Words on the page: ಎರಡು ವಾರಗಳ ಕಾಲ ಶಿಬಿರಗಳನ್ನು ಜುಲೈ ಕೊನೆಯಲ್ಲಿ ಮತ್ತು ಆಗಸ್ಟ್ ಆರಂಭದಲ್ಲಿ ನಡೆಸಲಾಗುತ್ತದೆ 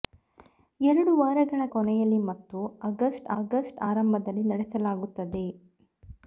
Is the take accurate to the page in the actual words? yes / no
no